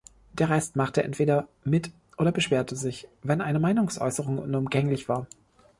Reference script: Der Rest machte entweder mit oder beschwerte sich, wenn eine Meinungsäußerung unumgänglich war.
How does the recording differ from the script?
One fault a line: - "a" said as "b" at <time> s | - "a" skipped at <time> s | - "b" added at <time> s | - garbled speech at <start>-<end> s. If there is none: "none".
none